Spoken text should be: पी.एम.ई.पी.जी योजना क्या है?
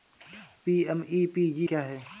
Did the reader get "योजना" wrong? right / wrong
wrong